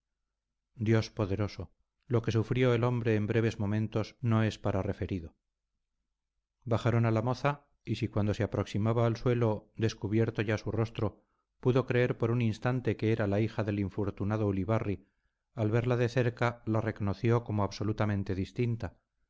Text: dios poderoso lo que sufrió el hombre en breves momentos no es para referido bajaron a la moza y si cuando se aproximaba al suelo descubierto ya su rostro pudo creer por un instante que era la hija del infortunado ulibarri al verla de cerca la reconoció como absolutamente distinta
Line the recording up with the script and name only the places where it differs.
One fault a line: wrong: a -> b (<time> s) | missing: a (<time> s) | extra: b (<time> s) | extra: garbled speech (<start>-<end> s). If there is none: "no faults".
no faults